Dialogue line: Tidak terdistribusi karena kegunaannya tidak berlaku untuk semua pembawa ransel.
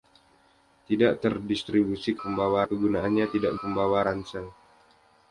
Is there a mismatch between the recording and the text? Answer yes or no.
yes